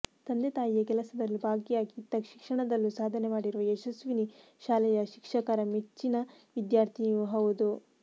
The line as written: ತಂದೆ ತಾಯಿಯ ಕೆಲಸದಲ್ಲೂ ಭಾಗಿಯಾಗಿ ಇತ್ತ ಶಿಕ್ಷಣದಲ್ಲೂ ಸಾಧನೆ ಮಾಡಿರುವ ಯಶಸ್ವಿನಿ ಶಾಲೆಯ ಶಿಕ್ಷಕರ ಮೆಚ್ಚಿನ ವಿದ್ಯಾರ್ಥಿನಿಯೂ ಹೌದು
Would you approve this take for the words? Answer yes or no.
yes